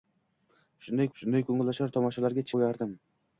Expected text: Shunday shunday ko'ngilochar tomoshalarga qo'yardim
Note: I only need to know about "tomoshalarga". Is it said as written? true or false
true